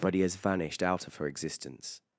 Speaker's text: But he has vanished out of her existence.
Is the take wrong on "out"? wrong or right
right